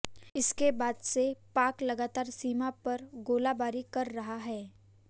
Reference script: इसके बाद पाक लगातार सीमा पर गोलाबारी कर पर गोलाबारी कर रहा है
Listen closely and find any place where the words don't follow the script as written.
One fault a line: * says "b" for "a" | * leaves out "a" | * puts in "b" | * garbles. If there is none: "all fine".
* puts in "से"
* leaves out "पर गोलाबारी कर"